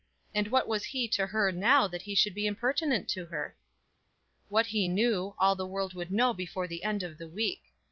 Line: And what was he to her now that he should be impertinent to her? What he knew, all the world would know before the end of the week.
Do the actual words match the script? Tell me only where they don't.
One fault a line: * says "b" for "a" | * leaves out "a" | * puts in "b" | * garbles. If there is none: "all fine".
all fine